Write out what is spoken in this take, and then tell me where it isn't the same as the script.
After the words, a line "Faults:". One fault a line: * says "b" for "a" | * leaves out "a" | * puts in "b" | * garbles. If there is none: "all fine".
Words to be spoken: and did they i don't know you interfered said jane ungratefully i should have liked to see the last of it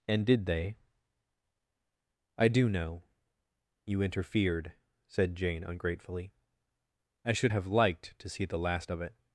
and did they i do know you interfered said jane ungratefully i should have liked to see the last of it
Faults:
* says "do" for "don't"